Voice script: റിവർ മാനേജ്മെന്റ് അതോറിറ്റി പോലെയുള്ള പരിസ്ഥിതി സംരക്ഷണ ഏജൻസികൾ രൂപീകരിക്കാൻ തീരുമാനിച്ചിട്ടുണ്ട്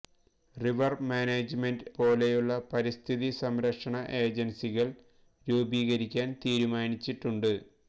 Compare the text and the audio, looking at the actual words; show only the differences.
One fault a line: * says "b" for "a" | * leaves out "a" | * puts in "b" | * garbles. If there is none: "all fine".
* leaves out "അതോറിറ്റി"